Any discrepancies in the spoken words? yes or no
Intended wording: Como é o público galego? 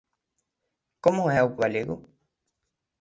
yes